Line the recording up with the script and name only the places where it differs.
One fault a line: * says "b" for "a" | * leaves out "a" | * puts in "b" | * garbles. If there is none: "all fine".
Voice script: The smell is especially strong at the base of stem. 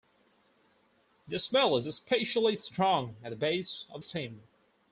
all fine